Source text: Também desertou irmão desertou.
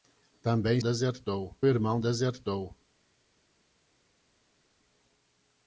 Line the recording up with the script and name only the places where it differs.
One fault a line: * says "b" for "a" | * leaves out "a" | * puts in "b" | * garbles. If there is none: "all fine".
all fine